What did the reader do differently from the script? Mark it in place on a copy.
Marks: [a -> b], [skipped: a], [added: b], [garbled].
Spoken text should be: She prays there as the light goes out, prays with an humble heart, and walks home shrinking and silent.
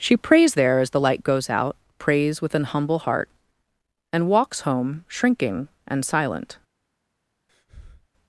She prays there as the light goes out, prays with an humble heart, and walks home shrinking and silent.